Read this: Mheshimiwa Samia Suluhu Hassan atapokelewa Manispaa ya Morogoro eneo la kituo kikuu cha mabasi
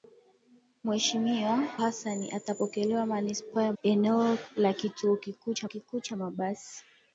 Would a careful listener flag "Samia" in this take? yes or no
yes